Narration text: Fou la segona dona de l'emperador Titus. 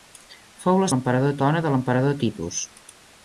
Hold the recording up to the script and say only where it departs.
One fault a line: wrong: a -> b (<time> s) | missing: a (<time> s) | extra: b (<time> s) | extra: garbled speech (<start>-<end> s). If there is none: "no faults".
wrong: segona -> l'emperador (0.9 s)